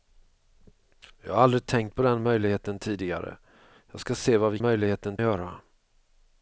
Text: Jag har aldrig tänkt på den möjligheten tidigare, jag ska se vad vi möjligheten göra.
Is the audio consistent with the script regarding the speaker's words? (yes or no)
yes